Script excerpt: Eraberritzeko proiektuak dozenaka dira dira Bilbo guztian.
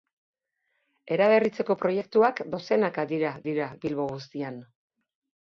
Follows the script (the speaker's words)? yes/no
yes